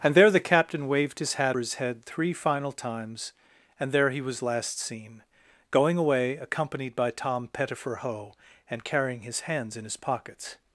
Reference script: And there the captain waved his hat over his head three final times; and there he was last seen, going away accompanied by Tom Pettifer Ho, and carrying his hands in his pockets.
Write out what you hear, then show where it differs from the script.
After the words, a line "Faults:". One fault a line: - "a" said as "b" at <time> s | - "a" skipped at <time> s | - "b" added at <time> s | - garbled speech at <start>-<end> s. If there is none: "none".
And there the captain waved his hat his head three final times; and there he was last seen, going away accompanied by Tom Pettifer Ho, and carrying his hands in his pockets.
Faults:
- "over" skipped at 1.6 s